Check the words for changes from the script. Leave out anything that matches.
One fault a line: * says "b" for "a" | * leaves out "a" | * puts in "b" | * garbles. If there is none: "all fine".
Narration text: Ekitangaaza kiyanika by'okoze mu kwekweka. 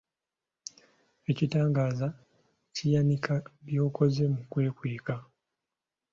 all fine